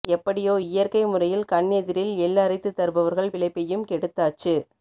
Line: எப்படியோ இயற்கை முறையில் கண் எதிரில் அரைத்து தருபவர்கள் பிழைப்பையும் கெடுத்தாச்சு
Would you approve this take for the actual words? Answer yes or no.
no